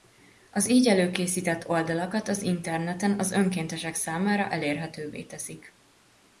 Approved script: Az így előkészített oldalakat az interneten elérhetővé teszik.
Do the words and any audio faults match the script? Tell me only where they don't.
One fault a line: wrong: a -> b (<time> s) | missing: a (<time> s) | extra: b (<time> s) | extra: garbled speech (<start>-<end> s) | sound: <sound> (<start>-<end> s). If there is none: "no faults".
extra: az önkéntesek számára (3.2 s)